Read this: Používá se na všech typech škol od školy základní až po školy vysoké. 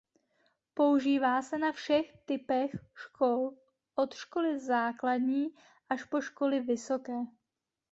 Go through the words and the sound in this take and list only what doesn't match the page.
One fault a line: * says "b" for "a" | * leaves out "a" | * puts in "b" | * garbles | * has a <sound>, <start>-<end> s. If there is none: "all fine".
all fine